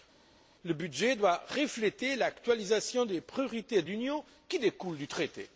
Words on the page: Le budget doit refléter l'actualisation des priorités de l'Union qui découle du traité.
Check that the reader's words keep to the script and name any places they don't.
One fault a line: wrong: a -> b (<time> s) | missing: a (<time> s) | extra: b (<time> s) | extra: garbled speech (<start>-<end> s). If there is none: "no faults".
no faults